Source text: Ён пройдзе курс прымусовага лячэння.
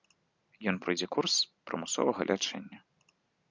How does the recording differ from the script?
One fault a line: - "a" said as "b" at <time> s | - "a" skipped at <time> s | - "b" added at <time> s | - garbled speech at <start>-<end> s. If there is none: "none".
none